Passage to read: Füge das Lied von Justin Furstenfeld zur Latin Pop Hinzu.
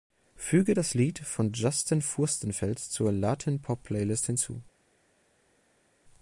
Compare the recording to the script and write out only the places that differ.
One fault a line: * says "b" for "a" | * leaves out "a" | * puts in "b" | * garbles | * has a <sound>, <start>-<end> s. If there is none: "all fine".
* puts in "Playlist"